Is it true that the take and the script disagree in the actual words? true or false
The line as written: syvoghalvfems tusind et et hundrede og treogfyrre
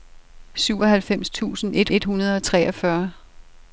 false